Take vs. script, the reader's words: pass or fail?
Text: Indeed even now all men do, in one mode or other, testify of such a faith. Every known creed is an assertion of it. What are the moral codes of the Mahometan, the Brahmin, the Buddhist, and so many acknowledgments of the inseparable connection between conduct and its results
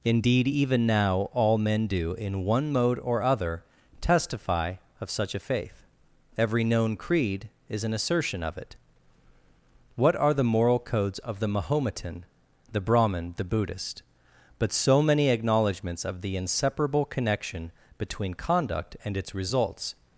fail